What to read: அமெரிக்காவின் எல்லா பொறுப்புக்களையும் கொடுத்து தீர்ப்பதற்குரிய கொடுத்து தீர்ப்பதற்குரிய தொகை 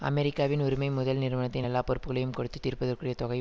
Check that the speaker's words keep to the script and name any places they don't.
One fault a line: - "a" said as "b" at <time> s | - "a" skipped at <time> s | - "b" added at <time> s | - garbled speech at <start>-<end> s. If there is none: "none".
- "உரிமை முதல் நிறுவனத்தின்" added at 0.6 s
- "கொடுத்து தீர்ப்பதற்குரிய" skipped at 3.1 s